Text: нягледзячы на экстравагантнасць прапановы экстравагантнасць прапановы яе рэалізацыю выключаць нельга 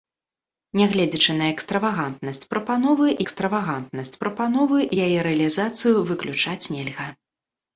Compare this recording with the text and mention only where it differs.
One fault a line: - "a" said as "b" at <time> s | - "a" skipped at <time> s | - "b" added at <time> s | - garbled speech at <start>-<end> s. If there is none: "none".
none